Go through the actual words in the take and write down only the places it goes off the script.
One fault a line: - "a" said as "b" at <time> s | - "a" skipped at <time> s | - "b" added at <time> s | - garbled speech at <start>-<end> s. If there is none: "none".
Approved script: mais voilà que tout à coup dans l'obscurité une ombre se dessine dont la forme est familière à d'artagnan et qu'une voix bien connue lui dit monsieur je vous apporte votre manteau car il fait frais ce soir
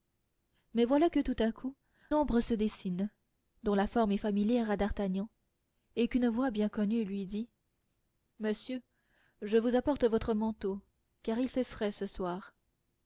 - "dans l'obscurité une" skipped at 1.8 s